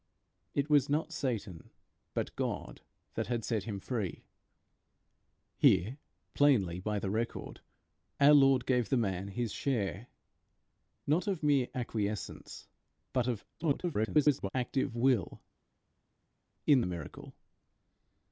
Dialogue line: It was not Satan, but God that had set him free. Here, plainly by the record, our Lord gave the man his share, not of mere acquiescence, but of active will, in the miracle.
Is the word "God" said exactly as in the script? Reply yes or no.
yes